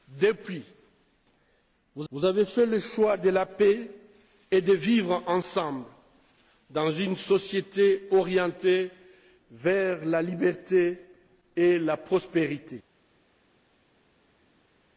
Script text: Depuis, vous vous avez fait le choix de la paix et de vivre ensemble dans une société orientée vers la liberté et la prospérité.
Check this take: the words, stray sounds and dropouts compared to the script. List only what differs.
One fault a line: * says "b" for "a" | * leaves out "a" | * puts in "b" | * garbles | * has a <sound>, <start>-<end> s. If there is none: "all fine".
all fine